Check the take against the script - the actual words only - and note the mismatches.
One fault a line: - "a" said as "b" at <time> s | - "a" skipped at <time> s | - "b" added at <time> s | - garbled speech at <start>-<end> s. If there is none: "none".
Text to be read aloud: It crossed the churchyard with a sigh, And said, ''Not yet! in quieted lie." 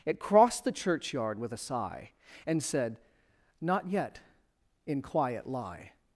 - "quieted" said as "quiet" at 5.0 s